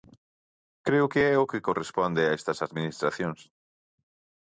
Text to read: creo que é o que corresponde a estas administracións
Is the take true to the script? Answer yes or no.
yes